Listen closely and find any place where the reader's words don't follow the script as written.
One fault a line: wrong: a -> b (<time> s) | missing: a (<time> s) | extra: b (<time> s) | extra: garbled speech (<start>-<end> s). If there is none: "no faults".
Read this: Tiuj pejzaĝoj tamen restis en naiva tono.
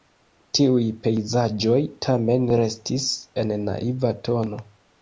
no faults